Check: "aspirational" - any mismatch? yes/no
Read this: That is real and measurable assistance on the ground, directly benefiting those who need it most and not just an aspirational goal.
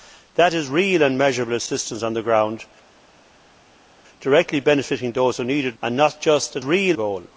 yes